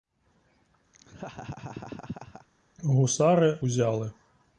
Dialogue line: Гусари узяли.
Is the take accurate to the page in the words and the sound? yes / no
no